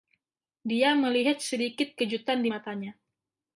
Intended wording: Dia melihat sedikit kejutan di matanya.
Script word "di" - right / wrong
right